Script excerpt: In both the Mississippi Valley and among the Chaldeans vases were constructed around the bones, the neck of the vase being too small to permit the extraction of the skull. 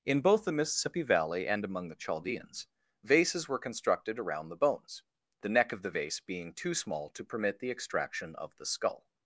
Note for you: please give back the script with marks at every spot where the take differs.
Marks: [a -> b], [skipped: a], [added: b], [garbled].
In both the Mississippi Valley and among the Chaldeans vases were constructed around the bones, the neck of the vase being too small to permit the extraction of the skull.